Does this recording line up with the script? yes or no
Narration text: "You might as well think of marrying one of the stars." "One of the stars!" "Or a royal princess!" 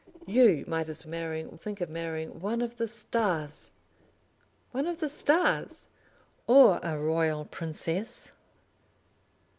no